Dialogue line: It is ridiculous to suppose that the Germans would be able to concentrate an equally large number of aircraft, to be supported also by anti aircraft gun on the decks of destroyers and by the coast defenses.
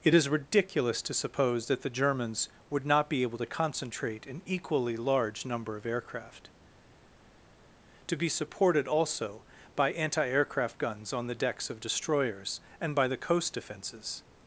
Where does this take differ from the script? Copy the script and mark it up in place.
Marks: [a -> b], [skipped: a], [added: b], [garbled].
It is ridiculous to suppose that the Germans would [added: not] be able to concentrate an equally large number of aircraft, to be supported also by anti aircraft [gun -> guns] on the decks of destroyers and by the coast defenses.